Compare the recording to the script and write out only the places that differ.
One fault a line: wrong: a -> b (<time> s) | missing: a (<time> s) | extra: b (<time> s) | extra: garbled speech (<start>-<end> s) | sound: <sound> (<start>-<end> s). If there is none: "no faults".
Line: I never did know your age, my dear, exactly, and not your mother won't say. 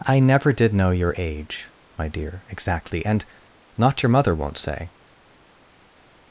no faults